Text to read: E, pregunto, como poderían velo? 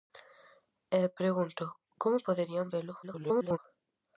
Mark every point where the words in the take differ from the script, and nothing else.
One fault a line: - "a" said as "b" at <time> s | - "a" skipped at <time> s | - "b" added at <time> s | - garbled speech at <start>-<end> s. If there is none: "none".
- garbled speech at 3.0-3.6 s